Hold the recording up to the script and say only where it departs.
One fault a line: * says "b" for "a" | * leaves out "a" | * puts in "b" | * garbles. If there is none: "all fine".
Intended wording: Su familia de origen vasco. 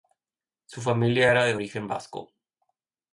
* puts in "era"